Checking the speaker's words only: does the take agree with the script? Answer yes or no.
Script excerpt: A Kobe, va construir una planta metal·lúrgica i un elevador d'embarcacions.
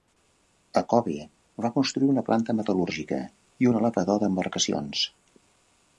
yes